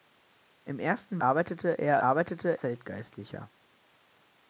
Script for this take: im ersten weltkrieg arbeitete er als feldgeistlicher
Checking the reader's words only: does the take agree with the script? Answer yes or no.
no